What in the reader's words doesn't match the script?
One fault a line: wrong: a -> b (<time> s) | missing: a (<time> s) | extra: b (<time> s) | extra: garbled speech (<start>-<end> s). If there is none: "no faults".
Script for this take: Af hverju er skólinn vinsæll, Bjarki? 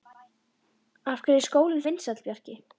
no faults